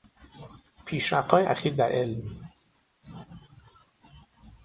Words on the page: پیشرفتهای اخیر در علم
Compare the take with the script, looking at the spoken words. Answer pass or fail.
pass